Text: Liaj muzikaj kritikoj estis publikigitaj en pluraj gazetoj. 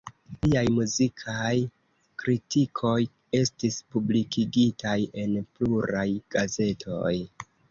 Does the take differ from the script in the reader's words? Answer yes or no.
no